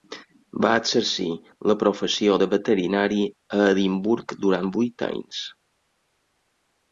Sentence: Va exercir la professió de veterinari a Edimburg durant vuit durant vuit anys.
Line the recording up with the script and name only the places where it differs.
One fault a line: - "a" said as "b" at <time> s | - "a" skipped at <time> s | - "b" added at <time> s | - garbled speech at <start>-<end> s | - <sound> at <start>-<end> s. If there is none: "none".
- "durant vuit" skipped at 5.1 s